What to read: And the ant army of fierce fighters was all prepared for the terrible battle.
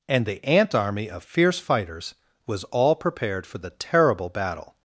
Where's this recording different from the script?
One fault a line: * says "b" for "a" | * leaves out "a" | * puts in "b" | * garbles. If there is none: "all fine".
all fine